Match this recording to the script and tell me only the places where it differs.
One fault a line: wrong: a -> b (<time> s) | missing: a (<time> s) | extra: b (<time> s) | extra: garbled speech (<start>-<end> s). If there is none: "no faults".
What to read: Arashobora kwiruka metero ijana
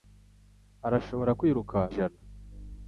missing: metero (1.8 s)